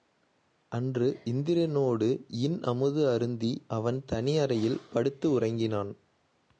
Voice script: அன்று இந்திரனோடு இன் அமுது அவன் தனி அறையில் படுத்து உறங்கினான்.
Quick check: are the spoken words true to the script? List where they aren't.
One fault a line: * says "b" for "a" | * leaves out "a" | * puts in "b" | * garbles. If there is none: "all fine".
* puts in "அருந்தி"